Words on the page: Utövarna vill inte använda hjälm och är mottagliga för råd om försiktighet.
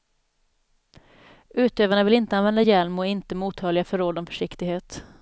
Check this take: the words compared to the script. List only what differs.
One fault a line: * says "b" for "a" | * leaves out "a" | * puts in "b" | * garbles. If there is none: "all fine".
* puts in "inte"